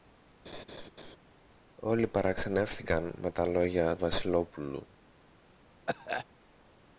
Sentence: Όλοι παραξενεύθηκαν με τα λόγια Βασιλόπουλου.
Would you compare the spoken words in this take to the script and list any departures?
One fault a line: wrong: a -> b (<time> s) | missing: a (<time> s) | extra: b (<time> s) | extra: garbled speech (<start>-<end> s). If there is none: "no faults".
no faults